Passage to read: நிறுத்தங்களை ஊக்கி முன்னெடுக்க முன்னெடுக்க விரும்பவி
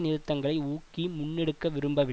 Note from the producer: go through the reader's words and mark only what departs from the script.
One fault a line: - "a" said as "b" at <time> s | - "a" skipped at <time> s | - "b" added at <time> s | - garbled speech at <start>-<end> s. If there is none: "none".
- "முன்னெடுக்க" skipped at 1.7 s